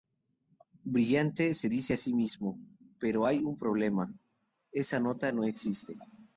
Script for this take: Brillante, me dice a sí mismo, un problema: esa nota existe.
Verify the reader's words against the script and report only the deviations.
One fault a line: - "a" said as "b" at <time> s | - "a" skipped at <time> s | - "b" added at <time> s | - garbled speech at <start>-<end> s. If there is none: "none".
- "me" said as "se" at 1.5 s
- "pero hay" added at 3.0 s
- "no" added at 5.3 s